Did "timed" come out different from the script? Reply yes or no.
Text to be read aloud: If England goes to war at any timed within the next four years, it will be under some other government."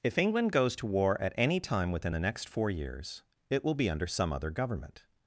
yes